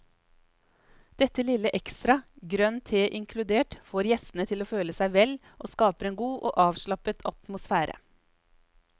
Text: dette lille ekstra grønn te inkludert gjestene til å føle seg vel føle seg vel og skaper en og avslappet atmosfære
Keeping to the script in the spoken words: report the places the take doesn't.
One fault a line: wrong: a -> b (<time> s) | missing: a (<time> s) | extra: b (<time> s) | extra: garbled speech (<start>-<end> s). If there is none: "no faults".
extra: får (3.9 s)
missing: føle seg vel (5.3 s)
extra: god (6.2 s)